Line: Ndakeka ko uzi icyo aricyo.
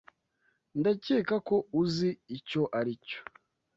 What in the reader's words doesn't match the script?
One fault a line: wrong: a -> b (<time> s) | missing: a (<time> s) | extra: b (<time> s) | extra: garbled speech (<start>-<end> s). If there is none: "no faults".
no faults